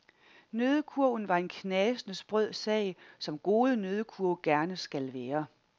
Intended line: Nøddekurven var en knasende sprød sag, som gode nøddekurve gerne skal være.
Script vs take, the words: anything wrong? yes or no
no